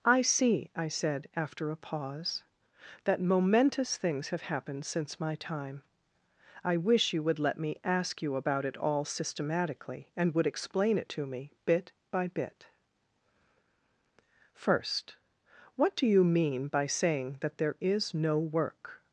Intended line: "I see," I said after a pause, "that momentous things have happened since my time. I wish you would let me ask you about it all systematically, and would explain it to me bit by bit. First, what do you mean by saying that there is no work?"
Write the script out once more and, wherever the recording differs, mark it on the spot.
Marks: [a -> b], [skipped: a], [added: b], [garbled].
"I see," I said after a pause, "that momentous things have happened since my time. I wish you would let me ask you about it all systematically, and would explain it to me bit by bit. First, what do you mean by saying that there is no work?"